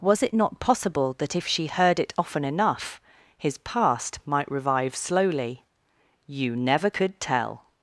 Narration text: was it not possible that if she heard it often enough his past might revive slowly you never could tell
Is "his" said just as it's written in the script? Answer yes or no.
yes